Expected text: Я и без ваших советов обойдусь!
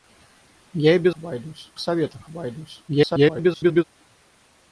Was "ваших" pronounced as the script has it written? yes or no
no